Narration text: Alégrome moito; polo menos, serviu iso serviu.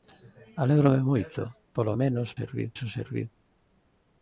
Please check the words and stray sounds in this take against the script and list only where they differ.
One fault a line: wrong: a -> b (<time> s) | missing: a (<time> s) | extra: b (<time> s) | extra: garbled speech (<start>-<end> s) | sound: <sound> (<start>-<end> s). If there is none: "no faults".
no faults